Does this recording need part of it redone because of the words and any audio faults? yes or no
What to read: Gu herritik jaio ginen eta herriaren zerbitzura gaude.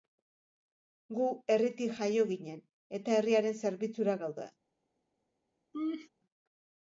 yes